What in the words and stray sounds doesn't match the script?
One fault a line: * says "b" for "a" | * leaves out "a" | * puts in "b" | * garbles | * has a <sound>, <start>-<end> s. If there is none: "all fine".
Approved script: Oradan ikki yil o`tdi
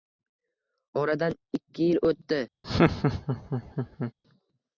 * has a laugh, 2.6-4.1 s